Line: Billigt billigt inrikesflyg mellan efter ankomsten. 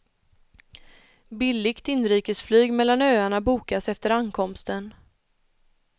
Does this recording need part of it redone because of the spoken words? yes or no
yes